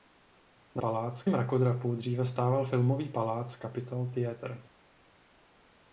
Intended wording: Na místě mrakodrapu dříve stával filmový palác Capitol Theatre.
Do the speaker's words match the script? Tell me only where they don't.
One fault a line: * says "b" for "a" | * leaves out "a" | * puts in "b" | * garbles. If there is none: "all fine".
* says "palác" for "místě"